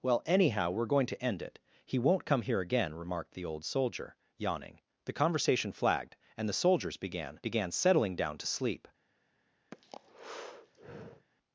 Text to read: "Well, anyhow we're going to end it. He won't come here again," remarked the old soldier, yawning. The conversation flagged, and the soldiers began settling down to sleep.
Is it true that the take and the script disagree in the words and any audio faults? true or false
true